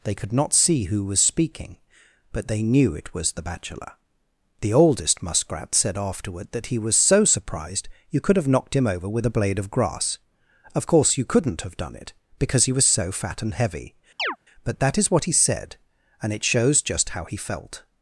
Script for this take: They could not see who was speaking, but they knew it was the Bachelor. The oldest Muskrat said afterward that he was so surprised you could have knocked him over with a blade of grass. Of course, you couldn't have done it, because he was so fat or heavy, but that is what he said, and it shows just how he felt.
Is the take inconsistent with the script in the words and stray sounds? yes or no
yes